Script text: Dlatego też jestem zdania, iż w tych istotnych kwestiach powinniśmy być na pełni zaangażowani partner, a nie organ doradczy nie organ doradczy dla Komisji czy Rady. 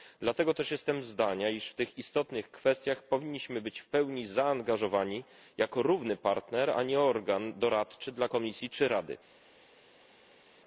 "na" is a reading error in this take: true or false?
true